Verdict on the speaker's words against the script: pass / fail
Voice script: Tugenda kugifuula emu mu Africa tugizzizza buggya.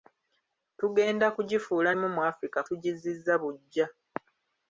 pass